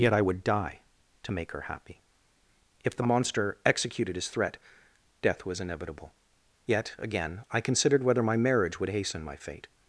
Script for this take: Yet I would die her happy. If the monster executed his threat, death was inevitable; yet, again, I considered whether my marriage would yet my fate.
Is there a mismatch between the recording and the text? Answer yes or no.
yes